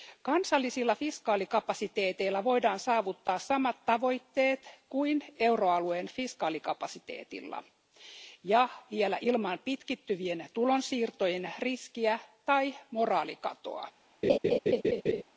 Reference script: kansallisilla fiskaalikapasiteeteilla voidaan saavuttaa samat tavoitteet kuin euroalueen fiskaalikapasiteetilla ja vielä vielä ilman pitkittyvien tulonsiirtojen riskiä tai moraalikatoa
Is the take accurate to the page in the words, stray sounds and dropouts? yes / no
no